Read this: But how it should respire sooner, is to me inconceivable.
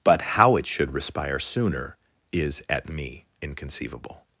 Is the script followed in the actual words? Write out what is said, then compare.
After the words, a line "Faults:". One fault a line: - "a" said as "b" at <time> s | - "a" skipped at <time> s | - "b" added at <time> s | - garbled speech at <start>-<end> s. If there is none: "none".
But how it should respire sooner, is at me inconceivable.
Faults:
- "to" said as "at" at 2.7 s